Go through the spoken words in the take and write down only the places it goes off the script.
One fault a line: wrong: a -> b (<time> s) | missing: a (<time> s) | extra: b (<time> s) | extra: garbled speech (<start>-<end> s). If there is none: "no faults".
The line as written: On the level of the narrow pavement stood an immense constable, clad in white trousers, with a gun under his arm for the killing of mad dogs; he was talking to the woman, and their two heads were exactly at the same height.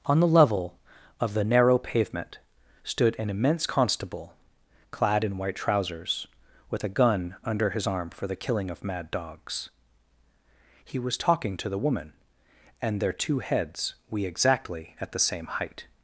wrong: were -> we (14.1 s)